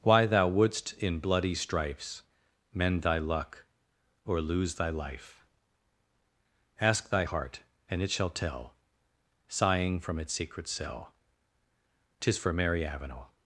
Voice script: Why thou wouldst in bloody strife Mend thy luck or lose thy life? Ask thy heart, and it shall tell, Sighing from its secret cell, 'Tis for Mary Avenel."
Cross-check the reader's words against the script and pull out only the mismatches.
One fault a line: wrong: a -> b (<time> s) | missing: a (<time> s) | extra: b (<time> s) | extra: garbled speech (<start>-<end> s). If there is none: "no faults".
wrong: strife -> strifes (1.5 s)